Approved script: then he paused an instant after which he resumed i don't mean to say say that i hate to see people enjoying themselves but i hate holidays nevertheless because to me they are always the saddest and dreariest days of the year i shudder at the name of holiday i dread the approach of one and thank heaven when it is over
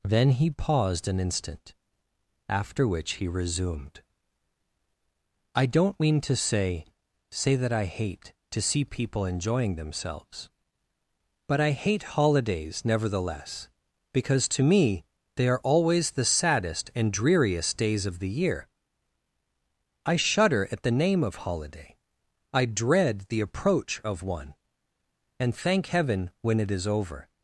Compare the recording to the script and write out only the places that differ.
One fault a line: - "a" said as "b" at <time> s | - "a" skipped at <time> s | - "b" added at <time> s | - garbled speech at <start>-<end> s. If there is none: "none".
none